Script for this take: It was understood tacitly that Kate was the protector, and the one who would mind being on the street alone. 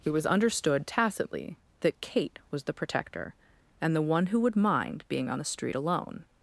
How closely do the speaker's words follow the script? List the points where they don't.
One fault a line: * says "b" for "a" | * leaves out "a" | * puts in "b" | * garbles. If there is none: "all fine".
all fine